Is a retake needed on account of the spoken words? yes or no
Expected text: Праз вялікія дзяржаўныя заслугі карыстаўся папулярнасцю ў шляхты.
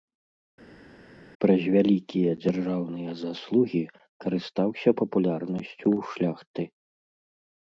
no